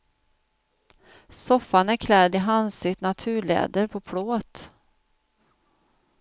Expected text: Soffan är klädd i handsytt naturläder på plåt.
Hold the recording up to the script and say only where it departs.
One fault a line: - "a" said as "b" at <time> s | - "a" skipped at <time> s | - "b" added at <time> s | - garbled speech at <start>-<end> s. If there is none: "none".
none